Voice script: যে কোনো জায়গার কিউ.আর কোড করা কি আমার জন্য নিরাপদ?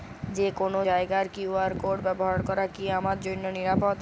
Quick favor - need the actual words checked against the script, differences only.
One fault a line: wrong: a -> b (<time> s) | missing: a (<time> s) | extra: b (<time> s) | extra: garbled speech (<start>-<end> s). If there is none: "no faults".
extra: ব্যবহার (2.0 s)